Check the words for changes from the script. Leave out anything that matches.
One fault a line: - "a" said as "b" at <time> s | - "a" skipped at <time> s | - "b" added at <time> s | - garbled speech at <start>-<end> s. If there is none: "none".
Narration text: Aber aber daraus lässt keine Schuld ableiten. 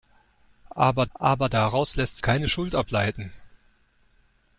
none